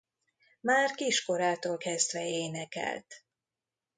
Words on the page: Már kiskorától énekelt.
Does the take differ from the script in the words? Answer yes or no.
yes